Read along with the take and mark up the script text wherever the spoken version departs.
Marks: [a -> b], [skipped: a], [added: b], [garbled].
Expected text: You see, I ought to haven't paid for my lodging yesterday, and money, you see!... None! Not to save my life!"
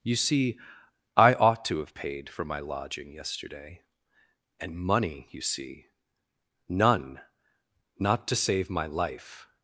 You see, I ought to [haven't -> have] paid for my lodging yesterday, and money, you see!... None! Not to save my life!"